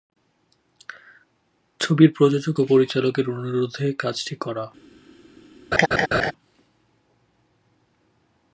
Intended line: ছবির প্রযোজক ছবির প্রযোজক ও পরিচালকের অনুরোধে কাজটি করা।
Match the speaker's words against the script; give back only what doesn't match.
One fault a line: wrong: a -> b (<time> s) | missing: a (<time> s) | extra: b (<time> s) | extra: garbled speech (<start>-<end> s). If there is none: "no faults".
missing: ছবির প্রযোজক (2.6 s)